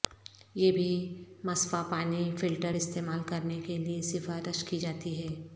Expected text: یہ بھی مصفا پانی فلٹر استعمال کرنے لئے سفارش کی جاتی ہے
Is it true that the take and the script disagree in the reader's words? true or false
true